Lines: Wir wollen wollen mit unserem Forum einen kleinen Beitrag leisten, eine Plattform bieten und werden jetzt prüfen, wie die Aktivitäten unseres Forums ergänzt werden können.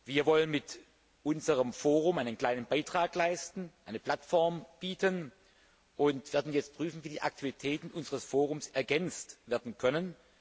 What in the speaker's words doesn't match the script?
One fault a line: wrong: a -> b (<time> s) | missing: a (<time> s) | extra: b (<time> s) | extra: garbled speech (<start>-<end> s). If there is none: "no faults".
missing: wollen (0.5 s)